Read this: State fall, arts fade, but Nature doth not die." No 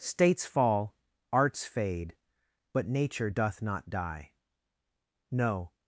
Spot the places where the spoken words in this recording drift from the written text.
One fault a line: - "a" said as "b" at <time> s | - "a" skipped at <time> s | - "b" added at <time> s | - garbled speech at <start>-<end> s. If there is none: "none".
- "State" said as "States" at 0.0 s